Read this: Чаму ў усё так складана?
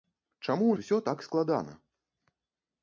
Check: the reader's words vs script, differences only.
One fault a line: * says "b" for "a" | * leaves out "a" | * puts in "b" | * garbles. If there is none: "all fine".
all fine